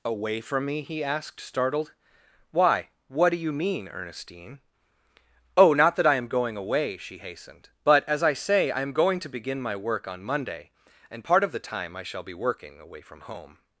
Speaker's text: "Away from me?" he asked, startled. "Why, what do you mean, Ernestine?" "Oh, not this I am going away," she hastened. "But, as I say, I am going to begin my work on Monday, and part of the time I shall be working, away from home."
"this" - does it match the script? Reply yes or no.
no